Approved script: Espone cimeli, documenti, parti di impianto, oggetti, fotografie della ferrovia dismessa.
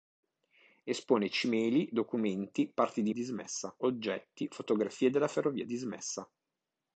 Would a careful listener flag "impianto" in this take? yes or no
yes